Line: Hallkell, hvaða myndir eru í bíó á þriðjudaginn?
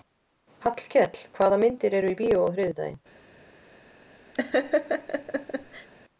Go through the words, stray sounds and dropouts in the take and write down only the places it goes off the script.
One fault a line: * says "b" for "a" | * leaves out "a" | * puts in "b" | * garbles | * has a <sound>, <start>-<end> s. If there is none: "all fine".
* has a laugh, 4.3-5.9 s